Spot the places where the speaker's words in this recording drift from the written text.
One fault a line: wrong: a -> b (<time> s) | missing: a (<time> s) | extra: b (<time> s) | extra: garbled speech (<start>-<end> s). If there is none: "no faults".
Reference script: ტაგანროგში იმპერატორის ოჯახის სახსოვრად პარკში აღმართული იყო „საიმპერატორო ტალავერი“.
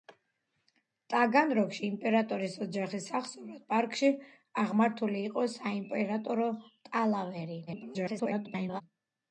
extra: garbled speech (7.7-8.8 s)